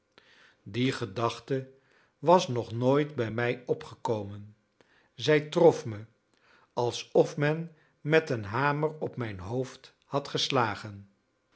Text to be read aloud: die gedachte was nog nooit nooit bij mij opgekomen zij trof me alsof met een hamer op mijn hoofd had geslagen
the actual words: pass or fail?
fail